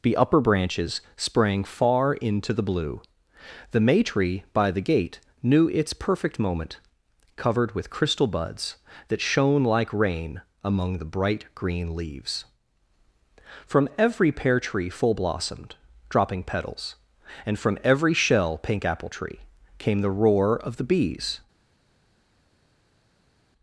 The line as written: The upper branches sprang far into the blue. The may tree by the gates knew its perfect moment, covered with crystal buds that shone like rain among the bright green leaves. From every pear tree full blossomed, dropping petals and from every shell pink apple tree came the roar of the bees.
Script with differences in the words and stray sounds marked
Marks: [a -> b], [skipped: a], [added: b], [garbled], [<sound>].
The upper branches sprang far into the blue. The may tree by the [gates -> gate] knew its perfect moment, covered with crystal buds that shone like rain among the bright green leaves. From every pear tree full blossomed, dropping petals and from every shell pink apple tree came the roar of the bees.